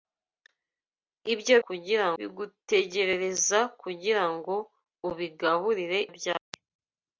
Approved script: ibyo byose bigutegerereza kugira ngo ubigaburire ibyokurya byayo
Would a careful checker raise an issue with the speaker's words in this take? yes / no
yes